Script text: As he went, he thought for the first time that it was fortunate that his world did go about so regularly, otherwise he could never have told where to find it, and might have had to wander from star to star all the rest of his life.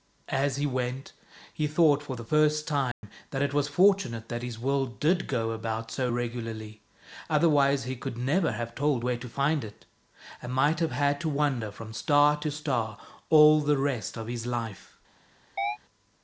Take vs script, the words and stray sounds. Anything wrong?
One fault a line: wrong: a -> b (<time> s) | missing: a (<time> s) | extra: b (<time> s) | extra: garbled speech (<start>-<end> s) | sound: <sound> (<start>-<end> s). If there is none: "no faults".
sound: dropout (2.9-3.0 s)
sound: chirp (15.6-15.8 s)